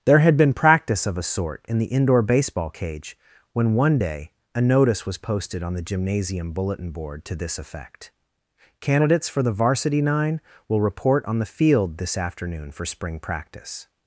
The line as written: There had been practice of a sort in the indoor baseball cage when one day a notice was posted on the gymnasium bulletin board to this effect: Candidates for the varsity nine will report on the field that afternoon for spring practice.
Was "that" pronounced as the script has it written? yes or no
no